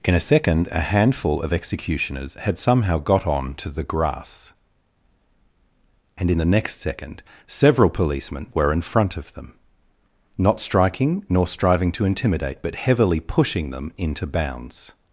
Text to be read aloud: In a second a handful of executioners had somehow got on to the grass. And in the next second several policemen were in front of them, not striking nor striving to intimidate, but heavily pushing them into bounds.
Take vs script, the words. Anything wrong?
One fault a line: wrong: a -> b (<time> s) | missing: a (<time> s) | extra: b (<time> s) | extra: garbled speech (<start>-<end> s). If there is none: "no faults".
no faults